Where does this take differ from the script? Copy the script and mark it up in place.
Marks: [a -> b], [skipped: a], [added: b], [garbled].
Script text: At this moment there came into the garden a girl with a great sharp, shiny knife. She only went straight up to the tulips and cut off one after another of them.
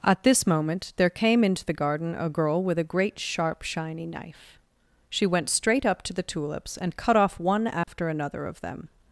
At this moment there came into the garden a girl with a great sharp, shiny knife. She [skipped: only] went straight up to the tulips and cut off one after another of them.